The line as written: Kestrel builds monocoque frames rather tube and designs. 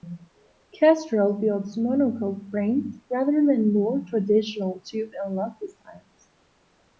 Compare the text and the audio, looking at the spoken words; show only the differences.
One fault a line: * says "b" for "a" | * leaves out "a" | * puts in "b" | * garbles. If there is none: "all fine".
* puts in "than more traditional"
* puts in "lug"